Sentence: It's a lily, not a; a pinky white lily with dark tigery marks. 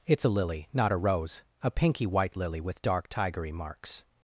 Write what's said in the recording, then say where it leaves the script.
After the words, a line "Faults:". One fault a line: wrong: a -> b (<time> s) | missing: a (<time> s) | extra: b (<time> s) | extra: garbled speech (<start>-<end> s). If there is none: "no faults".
It's a lily, not a rose; a pinky white lily with dark tigery marks.
Faults:
extra: rose (1.0 s)